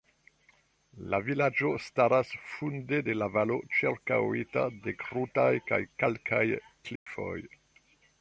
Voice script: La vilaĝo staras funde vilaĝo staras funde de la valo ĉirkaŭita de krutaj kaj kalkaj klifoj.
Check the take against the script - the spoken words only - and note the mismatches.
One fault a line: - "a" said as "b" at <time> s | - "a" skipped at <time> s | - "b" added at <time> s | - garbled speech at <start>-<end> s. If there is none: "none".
- "vilaĝo staras funde" skipped at 3.0 s